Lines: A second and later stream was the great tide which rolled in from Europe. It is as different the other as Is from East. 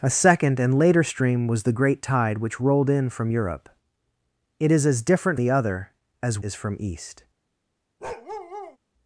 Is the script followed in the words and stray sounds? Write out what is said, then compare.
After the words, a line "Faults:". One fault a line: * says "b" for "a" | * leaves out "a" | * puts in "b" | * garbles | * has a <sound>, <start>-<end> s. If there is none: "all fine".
A second and later stream was the great tide which rolled in from Europe. It is as different the other as Is from East.
Faults:
* has a bark, 8.0-8.8 s